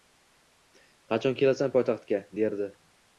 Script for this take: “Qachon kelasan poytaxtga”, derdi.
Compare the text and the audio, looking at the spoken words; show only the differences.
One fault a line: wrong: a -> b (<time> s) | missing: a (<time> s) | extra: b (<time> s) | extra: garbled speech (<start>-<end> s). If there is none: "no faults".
no faults